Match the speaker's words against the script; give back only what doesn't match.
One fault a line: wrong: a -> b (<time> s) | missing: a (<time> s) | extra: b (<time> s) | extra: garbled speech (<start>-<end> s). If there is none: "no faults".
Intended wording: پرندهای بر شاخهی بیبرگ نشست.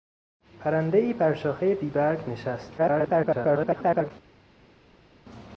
extra: garbled speech (2.8-4.1 s)